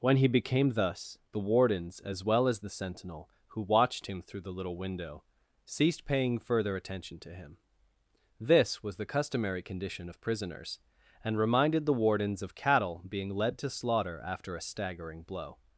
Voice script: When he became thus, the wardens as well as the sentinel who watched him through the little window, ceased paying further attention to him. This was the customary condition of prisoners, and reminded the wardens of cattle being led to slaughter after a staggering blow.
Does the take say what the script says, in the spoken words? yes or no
yes